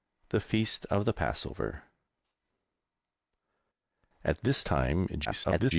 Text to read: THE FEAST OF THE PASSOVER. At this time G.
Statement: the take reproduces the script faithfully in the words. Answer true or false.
false